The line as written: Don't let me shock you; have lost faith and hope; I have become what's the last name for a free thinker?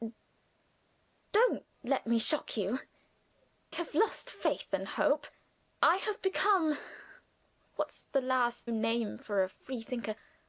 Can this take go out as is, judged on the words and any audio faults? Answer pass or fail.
pass